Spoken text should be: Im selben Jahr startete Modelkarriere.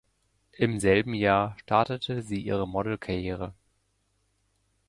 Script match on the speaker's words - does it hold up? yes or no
no